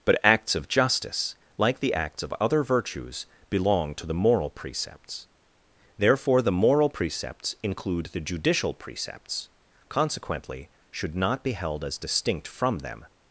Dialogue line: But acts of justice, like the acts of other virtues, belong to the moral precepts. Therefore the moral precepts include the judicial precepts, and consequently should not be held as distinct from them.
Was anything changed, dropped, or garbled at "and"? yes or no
yes